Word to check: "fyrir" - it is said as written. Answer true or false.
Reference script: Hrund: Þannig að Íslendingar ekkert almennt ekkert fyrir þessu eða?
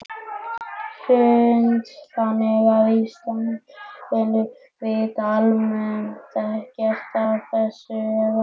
false